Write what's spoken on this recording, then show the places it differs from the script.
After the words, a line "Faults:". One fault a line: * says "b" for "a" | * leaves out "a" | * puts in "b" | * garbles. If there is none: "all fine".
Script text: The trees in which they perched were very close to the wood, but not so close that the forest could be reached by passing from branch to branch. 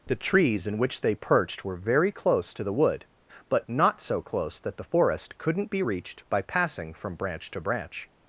The trees in which they perched were very close to the wood, but not so close that the forest couldn't be reached by passing from branch to branch.
Faults:
* says "couldn't" for "could"